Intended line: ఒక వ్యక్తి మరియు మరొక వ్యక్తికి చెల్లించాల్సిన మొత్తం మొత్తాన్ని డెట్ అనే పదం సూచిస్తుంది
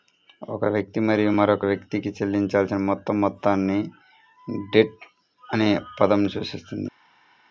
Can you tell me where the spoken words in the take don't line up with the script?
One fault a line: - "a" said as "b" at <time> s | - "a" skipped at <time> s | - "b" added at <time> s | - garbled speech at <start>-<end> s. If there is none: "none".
none